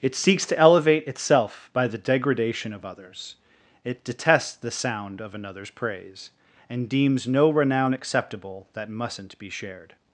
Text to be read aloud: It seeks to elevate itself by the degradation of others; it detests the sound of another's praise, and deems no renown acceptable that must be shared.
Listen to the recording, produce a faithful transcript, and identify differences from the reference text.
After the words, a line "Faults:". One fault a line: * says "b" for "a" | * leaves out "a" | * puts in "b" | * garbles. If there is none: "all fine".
It seeks to elevate itself by the degradation of others; it detests the sound of another's praise, and deems no renown acceptable that mustn't be shared.
Faults:
* says "mustn't" for "must"